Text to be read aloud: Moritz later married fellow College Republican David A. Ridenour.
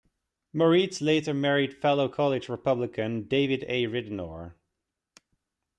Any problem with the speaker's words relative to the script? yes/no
no